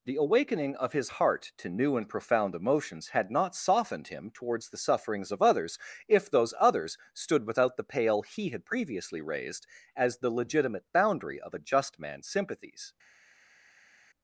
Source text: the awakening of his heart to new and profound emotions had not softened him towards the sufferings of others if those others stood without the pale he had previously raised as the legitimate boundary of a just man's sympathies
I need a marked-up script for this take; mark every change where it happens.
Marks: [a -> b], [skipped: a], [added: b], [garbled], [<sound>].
the awakening of his heart to new and profound emotions had not softened him towards the sufferings of others if those others stood without the pale he had previously raised as the legitimate boundary of a just man's sympathies